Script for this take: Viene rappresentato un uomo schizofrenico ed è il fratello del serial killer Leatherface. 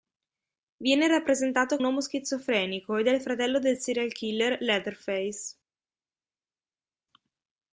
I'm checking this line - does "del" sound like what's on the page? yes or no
yes